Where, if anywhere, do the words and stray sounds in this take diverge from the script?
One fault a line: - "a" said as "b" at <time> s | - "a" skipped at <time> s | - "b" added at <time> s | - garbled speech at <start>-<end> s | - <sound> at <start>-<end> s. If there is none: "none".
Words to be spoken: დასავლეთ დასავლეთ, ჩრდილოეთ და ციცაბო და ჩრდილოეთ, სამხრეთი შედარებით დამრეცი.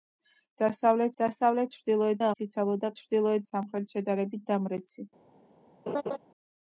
- laugh at 5.9-6.2 s